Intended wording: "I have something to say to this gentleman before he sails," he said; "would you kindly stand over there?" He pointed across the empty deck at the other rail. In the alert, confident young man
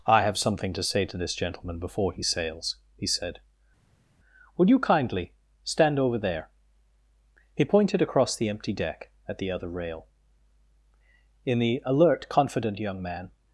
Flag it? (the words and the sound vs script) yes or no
no